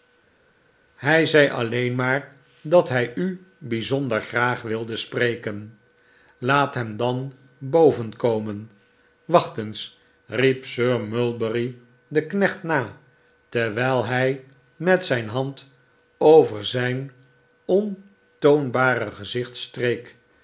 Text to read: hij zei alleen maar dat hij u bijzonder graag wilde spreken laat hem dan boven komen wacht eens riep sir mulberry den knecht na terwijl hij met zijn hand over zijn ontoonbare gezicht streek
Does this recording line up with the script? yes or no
yes